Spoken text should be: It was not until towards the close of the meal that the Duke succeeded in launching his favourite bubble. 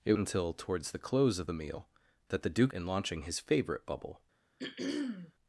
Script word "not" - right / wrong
wrong